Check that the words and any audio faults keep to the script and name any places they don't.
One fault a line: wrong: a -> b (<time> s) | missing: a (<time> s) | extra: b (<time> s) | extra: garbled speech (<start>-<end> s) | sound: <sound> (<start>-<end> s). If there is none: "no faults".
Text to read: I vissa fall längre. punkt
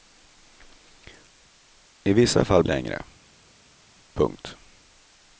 no faults